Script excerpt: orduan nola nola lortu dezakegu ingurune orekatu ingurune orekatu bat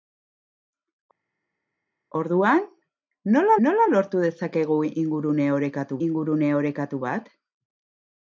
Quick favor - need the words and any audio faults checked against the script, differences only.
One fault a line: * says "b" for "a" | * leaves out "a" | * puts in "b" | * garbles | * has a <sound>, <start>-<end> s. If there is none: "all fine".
all fine